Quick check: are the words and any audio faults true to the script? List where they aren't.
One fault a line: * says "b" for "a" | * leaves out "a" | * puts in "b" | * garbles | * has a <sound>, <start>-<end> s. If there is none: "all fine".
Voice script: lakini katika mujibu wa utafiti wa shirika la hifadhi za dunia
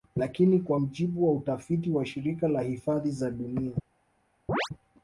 * says "kwa" for "katika"
* has a chirp, 4.5-4.7 s